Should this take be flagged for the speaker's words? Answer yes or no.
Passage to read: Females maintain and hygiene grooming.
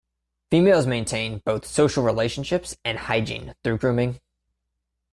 yes